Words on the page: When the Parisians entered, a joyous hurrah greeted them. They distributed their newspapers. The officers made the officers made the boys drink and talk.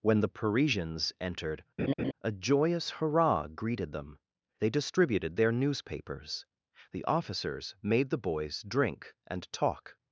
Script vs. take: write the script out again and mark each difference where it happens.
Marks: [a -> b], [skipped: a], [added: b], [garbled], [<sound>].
When the Parisians entered, [laugh] a joyous hurrah greeted them. They distributed their newspapers. The officers made the [skipped: officers made the] boys drink and talk.